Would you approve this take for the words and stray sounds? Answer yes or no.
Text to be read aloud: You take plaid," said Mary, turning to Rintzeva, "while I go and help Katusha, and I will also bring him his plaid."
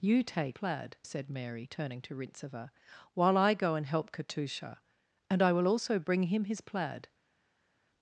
yes